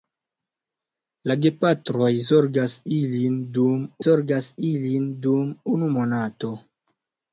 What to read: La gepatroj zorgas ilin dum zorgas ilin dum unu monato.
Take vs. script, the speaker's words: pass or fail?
pass